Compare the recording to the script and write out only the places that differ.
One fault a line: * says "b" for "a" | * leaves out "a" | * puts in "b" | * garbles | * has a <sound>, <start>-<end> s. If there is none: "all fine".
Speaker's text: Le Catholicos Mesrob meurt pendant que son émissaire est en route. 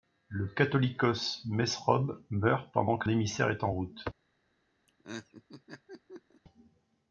* leaves out "son"
* has a laugh, 4.9-6.4 s